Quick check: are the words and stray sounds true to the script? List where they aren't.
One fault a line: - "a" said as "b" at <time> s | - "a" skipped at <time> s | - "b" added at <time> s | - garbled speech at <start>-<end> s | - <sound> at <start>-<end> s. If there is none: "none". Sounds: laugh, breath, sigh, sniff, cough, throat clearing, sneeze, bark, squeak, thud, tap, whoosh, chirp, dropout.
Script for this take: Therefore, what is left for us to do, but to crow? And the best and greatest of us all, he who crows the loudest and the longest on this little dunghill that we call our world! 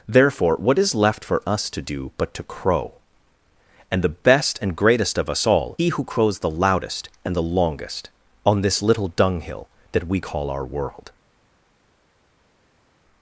none